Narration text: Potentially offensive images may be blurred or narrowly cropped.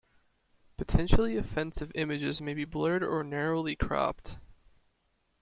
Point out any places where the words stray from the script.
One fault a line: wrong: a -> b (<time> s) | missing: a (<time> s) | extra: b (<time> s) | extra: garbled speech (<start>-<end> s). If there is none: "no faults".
no faults